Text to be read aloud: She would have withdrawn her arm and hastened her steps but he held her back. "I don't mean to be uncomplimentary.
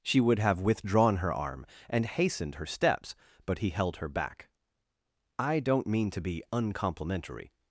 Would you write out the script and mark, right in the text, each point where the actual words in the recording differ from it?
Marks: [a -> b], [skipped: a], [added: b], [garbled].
She would have withdrawn her arm and hastened her steps but he held her back. "I don't mean to be uncomplimentary.